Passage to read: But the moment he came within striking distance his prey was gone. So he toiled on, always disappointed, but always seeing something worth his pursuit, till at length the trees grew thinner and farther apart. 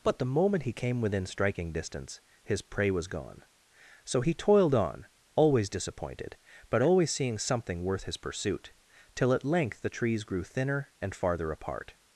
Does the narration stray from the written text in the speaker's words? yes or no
no